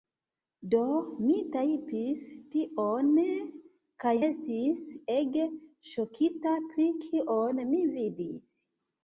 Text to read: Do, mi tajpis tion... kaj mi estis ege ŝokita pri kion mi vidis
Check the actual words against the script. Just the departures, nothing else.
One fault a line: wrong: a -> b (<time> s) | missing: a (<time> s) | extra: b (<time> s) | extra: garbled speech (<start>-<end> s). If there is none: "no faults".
missing: mi (4.2 s)